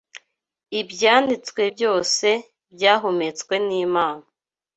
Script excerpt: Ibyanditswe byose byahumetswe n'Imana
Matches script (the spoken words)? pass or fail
pass